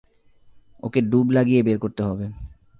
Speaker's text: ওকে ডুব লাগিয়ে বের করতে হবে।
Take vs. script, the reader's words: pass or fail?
pass